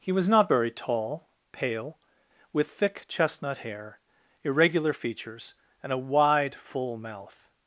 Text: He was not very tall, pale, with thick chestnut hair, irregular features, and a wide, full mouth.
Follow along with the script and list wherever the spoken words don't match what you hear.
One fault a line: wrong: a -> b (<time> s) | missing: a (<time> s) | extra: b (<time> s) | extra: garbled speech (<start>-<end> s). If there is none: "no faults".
no faults